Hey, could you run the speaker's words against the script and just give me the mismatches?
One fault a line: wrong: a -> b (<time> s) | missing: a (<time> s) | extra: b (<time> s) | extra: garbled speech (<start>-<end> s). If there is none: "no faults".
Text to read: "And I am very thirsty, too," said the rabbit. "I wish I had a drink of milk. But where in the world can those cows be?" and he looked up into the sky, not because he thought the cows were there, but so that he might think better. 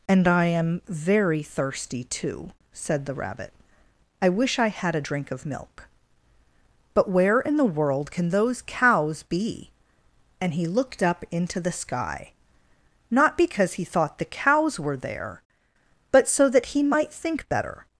no faults